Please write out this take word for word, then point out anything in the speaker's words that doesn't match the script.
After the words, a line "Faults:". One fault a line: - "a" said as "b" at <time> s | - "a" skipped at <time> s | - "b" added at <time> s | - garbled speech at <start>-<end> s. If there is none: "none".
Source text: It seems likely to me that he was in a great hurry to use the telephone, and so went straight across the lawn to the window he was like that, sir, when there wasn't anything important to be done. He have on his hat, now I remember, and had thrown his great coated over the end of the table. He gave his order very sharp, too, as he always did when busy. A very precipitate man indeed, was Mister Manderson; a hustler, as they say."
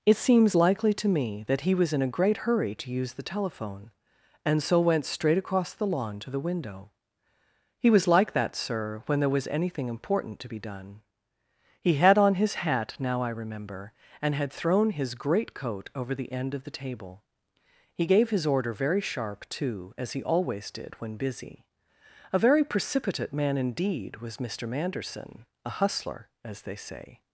It seems likely to me that he was in a great hurry to use the telephone, and so went straight across the lawn to the window he was like that, sir, when there was anything important to be done. He had on his hat, now I remember, and had thrown his great coat over the end of the table. He gave his order very sharp, too, as he always did when busy. A very precipitate man indeed, was Mister Manderson; a hustler, as they say."
Faults:
- "wasn't" said as "was" at 9.3 s
- "have" said as "had" at 11.9 s
- "coated" said as "coat" at 15.5 s